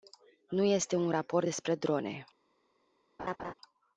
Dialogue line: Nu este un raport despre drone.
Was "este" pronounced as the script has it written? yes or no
yes